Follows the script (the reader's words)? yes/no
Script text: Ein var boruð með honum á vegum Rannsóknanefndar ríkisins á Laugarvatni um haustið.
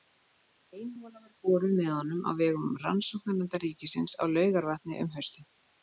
no